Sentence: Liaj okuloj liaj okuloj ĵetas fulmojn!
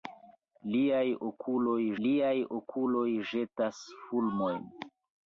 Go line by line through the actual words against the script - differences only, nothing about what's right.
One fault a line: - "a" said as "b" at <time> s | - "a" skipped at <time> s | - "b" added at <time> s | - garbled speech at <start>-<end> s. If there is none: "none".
none